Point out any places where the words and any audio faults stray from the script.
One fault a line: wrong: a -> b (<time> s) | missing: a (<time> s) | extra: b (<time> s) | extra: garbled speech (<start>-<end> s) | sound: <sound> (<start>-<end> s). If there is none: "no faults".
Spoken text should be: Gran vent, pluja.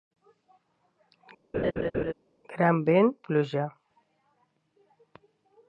sound: laugh (1.5-2.1 s)